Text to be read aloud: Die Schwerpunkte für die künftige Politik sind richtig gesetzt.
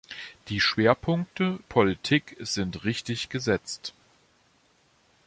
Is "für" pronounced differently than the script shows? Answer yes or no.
yes